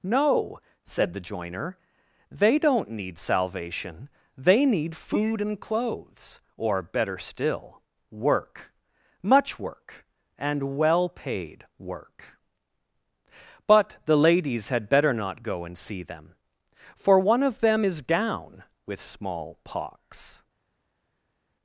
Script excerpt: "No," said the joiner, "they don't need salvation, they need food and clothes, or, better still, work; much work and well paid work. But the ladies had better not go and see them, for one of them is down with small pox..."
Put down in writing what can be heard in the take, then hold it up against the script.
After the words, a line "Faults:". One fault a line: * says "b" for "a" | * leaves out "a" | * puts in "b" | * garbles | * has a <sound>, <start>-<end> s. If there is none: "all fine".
"No," said the joiner, "they don't need salvation, they need food and clothes, or, better still, work; much work and well paid work. But the ladies had better not go and see them, for one of them is down with small pox..."
Faults:
all fine